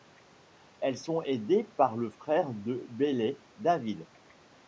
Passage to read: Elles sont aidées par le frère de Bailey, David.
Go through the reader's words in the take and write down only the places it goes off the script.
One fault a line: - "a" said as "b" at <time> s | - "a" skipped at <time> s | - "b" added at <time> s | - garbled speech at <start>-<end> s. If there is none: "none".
none